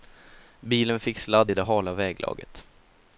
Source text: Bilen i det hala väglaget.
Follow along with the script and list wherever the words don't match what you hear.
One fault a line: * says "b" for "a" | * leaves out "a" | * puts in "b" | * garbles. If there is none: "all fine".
* puts in "fick sladd"